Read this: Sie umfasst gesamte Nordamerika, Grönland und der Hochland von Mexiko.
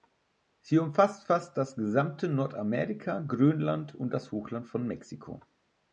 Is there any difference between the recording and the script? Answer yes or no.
yes